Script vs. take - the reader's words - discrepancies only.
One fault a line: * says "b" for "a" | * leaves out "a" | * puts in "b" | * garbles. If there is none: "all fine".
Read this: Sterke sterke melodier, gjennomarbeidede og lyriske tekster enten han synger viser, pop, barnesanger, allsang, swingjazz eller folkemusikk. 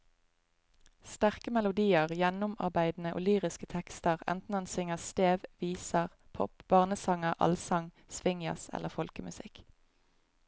* leaves out "sterke"
* puts in "stev"